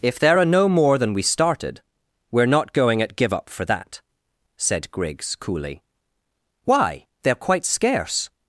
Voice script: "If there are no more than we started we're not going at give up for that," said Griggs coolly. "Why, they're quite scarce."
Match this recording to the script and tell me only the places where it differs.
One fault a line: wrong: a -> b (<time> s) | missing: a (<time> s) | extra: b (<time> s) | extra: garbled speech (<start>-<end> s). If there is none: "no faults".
no faults